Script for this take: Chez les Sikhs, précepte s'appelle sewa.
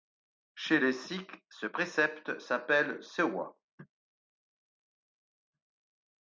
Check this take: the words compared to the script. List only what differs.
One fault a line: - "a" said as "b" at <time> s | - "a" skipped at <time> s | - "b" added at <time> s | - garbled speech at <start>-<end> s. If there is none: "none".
- "ce" added at 1.5 s